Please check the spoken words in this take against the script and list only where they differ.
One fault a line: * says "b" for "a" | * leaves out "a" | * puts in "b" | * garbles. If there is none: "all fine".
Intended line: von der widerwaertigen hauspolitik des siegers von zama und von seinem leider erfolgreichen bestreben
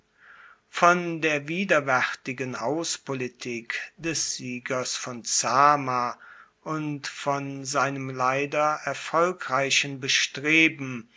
all fine